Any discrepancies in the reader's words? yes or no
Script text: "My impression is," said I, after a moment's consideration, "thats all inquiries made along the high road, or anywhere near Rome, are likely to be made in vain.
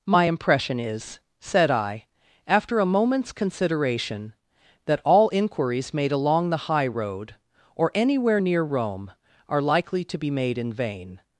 yes